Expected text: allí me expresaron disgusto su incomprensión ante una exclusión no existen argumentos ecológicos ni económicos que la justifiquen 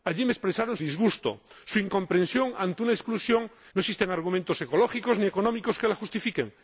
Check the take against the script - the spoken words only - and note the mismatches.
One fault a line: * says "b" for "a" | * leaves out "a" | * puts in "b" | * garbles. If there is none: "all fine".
all fine